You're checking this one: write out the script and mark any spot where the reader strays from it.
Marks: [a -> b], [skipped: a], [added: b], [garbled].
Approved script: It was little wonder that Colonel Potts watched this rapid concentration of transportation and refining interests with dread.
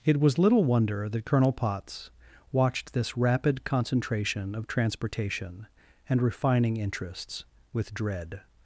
It was little wonder that Colonel Potts watched this rapid concentration of transportation and refining interests with dread.